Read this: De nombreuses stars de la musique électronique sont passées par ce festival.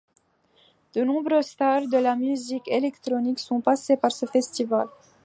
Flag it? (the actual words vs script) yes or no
no